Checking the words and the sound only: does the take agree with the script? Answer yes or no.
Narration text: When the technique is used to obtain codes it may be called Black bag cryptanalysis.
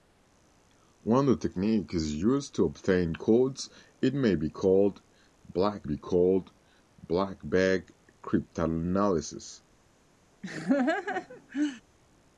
no